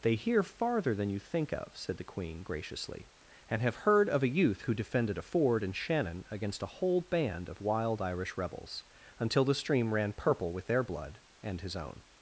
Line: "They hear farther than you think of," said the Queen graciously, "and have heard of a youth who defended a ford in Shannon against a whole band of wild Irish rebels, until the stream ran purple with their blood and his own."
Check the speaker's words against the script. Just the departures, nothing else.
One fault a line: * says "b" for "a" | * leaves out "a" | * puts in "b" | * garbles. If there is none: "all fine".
all fine